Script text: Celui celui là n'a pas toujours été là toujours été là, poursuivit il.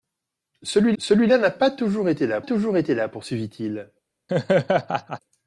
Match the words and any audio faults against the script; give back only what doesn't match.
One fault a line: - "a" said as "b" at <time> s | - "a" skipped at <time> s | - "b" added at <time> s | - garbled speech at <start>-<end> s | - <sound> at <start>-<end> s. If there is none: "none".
- laugh at 4.3-5.2 s